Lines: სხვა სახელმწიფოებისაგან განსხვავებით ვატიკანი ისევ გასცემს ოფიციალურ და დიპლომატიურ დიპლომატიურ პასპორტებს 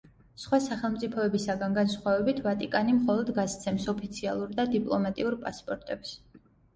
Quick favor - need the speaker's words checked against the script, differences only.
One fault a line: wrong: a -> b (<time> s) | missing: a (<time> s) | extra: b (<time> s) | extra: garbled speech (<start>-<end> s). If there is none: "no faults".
wrong: ისევ -> მხოლოდ (3.0 s)
missing: დიპლომატიურ (5.4 s)